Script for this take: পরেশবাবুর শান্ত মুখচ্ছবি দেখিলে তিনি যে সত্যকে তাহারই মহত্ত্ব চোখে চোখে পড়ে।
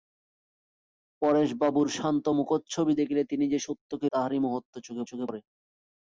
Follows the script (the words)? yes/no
yes